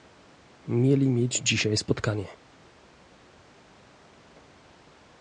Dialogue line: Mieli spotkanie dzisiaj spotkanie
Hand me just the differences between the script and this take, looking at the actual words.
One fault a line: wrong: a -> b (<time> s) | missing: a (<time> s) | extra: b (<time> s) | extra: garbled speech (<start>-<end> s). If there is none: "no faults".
wrong: spotkanie -> mieć (1.1 s)